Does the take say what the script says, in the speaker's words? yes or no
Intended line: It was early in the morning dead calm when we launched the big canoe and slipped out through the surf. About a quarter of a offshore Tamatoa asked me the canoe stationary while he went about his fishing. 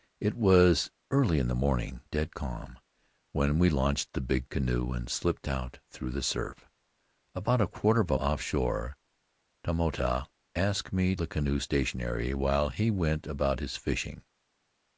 yes